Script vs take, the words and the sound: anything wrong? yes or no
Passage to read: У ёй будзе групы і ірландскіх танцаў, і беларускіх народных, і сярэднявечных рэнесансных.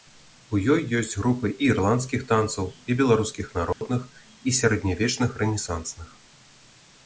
yes